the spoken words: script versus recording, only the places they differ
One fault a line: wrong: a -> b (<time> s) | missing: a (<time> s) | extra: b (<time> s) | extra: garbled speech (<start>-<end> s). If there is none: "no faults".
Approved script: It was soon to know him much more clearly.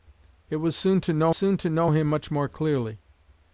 extra: soon to know (1.3 s)